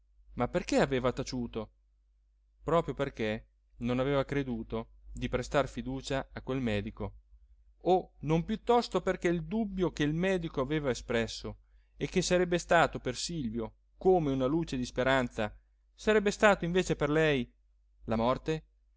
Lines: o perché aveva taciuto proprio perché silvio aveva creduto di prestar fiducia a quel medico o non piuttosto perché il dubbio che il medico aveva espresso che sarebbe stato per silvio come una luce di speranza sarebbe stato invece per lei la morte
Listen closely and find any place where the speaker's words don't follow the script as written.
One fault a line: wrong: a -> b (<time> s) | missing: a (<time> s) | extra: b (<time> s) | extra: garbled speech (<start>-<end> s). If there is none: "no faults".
wrong: o -> ma (0.3 s)
wrong: silvio -> non (3.8 s)
extra: e (12.0 s)